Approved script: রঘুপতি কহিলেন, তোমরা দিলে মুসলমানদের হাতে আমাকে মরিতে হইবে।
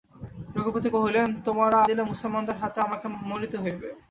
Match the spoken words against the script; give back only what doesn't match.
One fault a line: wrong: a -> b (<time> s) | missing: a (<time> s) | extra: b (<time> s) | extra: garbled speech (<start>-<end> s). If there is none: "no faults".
no faults